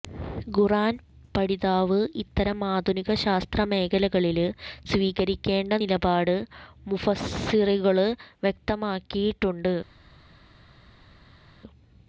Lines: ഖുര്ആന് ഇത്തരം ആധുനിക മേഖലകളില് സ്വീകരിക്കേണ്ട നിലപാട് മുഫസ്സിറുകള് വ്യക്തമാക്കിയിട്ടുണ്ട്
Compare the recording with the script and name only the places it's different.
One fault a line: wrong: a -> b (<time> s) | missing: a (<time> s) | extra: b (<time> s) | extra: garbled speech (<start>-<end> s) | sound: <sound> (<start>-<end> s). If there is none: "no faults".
extra: പഠിതാവ് (1.3 s)
extra: ശാസ്ത്ര (3.2 s)